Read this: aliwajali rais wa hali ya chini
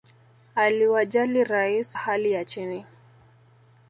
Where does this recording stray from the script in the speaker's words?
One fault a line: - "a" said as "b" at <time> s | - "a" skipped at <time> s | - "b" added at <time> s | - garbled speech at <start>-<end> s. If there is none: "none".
- "wa" skipped at 2.0 s